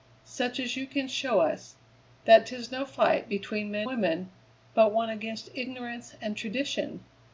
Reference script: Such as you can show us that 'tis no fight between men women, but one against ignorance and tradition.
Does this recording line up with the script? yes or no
yes